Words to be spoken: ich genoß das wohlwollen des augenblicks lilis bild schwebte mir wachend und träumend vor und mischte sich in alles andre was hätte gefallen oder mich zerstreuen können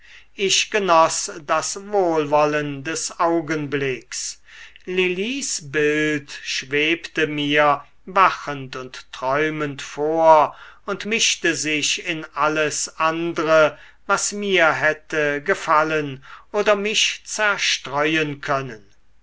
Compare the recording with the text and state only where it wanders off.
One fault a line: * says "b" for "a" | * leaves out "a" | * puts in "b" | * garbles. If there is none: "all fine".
* puts in "mir"